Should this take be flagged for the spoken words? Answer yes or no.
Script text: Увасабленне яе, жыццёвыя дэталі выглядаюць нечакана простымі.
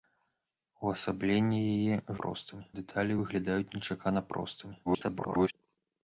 yes